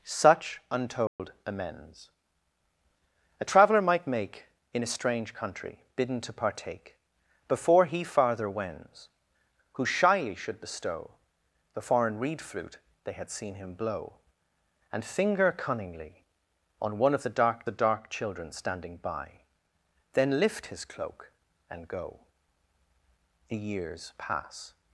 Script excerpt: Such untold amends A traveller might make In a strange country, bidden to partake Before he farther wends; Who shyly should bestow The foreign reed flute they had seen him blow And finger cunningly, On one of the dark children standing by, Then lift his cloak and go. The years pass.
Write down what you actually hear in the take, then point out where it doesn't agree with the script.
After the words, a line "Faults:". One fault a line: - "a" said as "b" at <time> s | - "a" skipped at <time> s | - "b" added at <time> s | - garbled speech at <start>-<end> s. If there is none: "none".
Such untold amends A traveller might make In a strange country, bidden to partake Before he farther wends; Who shyly should bestow The foreign reed flute they had seen him blow And finger cunningly, On one of the dark the dark children standing by, Then lift his cloak and go. The years pass.
Faults:
- "the dark" added at 17.6 s